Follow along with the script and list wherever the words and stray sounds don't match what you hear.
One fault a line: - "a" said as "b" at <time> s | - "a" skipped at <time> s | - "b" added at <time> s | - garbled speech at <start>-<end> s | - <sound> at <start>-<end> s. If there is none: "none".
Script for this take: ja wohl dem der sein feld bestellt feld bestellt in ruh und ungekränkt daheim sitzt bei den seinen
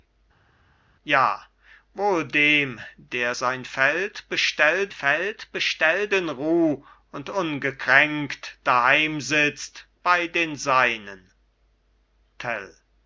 none